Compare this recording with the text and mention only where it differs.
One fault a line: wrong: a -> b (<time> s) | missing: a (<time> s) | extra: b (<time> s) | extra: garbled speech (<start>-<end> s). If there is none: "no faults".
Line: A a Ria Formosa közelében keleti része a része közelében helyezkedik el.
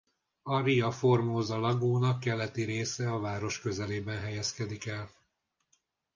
missing: a (0.6 s)
wrong: közelében -> lagúna (1.6 s)
wrong: része -> város (3.2 s)